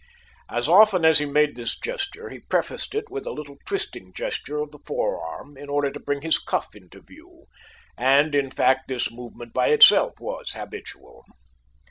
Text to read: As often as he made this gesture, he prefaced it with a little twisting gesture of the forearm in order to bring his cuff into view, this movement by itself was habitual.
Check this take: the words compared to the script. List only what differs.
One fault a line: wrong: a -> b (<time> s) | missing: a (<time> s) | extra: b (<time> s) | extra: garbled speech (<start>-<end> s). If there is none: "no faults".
extra: and in fact (8.0 s)